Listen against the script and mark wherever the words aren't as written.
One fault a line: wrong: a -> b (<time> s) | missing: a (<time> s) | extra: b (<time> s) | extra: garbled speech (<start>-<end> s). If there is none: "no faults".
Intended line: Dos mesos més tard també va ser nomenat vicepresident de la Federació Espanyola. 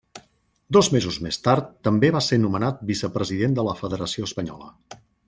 no faults